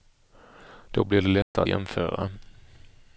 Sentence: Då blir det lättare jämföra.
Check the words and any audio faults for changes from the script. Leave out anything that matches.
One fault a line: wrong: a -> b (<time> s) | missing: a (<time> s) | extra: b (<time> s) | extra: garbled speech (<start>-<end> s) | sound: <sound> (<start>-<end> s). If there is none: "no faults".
sound: dropout (1.4-1.6 s)